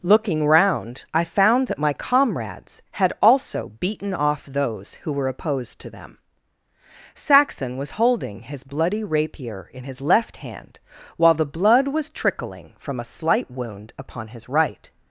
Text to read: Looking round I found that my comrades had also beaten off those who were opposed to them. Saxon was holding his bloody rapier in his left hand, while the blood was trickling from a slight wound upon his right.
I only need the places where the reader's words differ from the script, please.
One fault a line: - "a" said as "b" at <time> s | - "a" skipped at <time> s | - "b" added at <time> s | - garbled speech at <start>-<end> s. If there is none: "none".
none